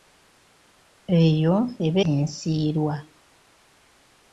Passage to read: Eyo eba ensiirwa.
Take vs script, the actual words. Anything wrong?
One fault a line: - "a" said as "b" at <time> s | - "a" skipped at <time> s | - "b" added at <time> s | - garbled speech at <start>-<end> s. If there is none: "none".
none